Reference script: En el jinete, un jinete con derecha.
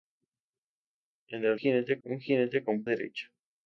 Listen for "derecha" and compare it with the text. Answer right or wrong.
right